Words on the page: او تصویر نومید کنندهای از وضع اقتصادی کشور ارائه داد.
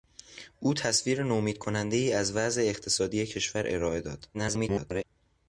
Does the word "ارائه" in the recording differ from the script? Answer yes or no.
no